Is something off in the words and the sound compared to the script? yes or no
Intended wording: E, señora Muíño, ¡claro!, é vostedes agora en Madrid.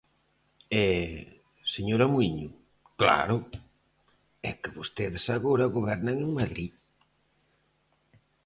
yes